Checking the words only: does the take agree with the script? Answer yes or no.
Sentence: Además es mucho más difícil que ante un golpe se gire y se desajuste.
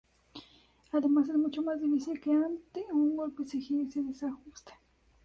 yes